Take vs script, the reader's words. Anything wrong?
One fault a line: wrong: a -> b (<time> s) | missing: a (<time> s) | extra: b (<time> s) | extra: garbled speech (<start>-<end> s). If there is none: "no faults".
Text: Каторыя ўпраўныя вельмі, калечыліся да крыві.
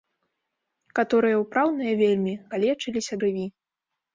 missing: да (3.1 s)